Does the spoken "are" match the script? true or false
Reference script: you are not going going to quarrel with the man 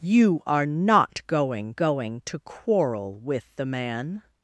true